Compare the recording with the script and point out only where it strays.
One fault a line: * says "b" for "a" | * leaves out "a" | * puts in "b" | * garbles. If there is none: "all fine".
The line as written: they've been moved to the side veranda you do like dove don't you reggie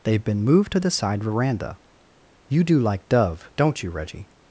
all fine